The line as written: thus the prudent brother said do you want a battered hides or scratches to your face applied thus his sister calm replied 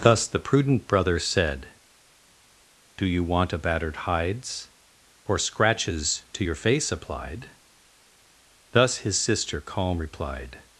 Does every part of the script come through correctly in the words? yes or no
yes